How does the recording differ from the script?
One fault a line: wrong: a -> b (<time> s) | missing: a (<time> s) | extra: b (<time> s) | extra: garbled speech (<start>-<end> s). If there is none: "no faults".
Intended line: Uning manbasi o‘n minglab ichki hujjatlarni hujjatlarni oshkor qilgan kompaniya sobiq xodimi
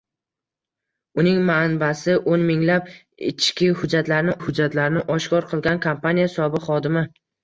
no faults